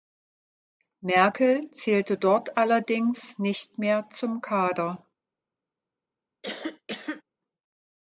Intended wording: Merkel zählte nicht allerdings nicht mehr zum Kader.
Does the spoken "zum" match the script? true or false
true